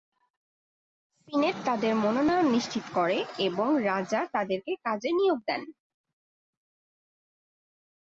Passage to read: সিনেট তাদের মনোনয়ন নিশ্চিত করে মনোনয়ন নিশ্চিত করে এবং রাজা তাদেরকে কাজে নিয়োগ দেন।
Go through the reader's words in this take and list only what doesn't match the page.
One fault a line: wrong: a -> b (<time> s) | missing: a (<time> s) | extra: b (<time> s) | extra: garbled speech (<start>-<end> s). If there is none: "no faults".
missing: মনোনয়ন নিশ্চিত করে (3.2 s)